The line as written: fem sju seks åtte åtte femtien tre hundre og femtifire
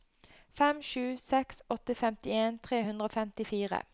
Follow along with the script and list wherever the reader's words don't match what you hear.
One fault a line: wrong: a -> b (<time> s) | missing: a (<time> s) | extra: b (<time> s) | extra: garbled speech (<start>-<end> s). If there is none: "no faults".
missing: åtte (2.0 s)